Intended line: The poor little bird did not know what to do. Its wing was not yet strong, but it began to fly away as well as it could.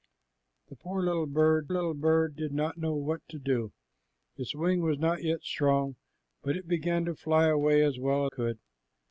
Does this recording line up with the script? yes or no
no